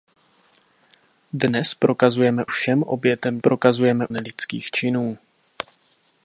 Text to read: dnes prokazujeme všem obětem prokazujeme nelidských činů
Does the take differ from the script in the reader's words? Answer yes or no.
no